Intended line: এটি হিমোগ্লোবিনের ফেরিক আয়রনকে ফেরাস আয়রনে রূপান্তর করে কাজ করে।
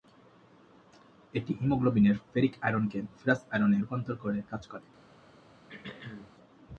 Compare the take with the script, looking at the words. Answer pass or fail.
pass